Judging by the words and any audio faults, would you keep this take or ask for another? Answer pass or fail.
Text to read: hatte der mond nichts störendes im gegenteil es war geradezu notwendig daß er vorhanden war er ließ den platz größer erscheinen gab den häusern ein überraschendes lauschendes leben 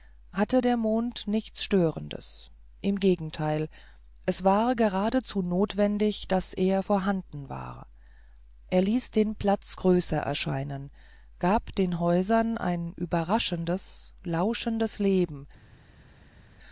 pass